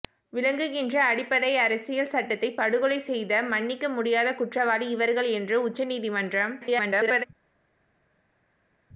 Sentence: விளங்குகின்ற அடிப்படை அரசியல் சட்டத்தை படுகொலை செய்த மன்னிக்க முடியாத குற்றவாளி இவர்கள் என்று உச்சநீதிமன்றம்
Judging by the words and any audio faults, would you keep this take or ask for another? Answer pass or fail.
fail